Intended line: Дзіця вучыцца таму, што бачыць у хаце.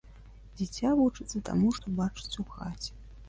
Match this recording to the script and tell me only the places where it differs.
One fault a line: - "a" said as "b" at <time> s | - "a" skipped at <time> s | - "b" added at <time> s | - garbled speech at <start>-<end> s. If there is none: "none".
none